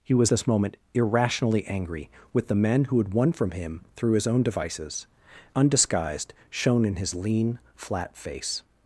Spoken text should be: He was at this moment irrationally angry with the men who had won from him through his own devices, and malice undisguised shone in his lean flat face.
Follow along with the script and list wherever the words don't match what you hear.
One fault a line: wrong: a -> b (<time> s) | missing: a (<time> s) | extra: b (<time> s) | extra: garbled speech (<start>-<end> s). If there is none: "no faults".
missing: at (0.3 s)
missing: and malice (5.1 s)